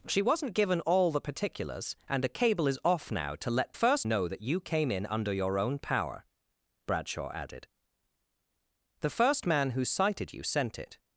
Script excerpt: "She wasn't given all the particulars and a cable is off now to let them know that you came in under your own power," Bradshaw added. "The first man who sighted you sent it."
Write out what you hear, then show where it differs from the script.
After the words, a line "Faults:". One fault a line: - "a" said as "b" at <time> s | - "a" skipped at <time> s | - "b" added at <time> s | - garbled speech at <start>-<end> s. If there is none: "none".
"She wasn't given all the particulars and a cable is off now to let first know that you came in under your own power," Bradshaw added. "The first man who sighted you sent it."
Faults:
- "them" said as "first" at 3.7 s